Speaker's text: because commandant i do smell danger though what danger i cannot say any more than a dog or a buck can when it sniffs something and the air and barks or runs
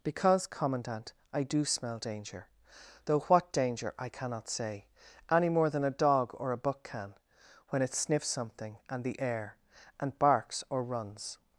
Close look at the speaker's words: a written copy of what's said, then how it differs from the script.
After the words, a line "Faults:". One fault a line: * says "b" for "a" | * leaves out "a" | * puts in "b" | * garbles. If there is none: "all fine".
because commandant i do smell danger though what danger i cannot say any more than a dog or a buck can when it sniffs something and the air and barks or runs
Faults:
all fine